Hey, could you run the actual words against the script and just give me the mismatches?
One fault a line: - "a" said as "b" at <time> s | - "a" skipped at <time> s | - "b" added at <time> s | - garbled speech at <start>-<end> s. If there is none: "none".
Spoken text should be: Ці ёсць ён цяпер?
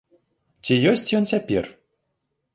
none